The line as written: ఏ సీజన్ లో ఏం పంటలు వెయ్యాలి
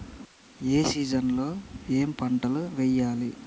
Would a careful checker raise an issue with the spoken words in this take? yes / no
no